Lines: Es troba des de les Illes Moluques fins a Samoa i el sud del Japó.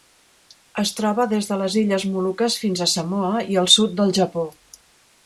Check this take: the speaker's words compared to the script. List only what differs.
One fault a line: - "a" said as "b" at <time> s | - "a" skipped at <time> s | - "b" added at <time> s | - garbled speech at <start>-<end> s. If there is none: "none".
none